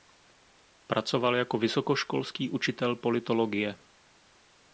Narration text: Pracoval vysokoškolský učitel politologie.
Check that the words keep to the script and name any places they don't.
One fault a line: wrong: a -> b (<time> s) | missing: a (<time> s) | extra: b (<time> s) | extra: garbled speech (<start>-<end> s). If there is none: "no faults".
extra: jako (1.4 s)